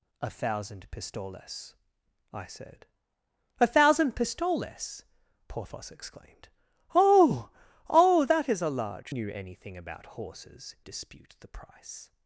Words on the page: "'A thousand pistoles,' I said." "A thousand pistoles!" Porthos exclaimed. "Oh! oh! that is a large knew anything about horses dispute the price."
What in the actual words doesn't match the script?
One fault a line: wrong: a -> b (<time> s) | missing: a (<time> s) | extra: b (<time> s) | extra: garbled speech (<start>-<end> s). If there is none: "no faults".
no faults